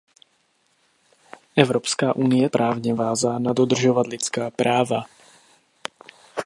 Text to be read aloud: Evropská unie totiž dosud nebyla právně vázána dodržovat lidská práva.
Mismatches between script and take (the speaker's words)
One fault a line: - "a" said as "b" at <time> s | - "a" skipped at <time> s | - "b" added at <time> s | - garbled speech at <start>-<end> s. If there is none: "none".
- "totiž dosud nebyla" skipped at 2.5 s